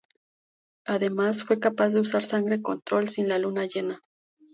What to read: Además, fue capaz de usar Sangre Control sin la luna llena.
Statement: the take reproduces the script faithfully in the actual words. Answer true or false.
true